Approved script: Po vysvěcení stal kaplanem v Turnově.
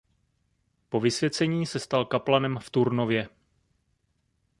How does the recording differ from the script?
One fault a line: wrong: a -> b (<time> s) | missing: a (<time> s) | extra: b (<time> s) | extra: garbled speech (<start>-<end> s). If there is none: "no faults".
extra: se (1.6 s)